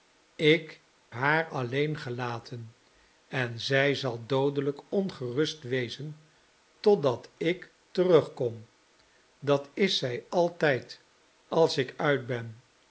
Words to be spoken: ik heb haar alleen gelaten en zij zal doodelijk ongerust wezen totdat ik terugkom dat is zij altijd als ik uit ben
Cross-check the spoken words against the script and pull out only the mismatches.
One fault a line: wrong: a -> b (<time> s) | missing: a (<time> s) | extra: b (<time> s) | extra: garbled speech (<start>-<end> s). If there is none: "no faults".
missing: heb (0.8 s)